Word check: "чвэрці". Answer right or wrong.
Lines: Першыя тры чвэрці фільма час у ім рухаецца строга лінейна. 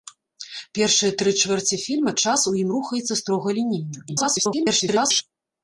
right